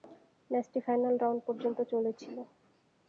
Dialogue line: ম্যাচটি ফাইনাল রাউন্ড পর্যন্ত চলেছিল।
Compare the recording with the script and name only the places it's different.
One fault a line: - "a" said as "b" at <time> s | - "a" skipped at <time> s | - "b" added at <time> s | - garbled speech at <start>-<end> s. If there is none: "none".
none